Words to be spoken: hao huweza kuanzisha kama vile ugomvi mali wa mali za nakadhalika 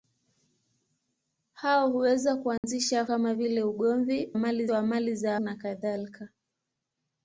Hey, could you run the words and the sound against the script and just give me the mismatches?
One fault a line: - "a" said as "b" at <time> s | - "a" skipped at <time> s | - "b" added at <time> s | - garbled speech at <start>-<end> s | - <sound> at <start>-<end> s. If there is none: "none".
- dropout at 2.6-2.6 s